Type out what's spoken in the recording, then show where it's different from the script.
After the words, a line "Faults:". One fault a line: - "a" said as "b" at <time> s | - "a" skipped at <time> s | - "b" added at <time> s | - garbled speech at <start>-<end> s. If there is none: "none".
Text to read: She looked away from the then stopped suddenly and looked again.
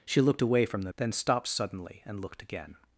She looked away from the then stopped suddenly and looked again.
Faults:
none